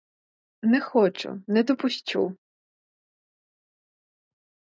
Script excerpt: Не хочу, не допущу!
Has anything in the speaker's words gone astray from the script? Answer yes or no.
no